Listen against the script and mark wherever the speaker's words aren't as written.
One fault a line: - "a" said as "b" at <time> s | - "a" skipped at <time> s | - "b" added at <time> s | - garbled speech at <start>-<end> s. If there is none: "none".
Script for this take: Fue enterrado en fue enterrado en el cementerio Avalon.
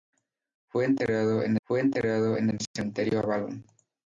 none